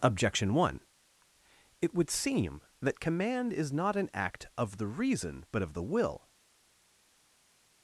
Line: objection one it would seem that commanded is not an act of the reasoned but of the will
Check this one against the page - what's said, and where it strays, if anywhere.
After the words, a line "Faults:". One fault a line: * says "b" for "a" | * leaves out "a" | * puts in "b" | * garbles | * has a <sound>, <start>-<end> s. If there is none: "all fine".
objection one it would seem that command is not an act of the reason but of the will
Faults:
* says "command" for "commanded"
* says "reason" for "reasoned"